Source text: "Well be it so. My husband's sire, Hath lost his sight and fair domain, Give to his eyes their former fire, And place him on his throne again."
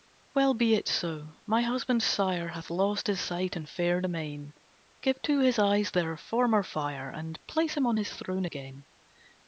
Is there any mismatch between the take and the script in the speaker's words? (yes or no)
no